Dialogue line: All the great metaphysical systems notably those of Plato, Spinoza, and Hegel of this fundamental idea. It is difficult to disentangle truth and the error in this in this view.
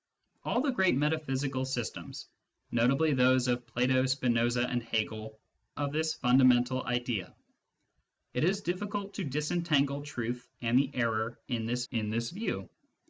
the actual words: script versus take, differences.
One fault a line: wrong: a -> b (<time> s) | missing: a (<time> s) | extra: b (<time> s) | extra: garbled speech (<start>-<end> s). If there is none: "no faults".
no faults